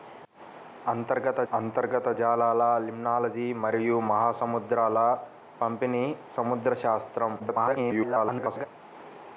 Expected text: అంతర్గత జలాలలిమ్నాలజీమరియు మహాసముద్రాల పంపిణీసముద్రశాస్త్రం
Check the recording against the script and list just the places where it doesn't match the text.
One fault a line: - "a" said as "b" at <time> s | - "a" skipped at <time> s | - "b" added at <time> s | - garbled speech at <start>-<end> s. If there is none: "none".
- "అంతర్గత" added at 1.5 s
- garbled speech at 7.4-8.7 s